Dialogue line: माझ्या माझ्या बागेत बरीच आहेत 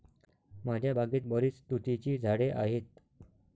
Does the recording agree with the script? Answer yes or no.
no